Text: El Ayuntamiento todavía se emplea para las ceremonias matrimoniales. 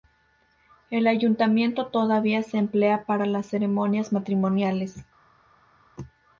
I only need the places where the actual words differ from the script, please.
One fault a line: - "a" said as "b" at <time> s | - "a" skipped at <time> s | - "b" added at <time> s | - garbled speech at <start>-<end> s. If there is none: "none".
none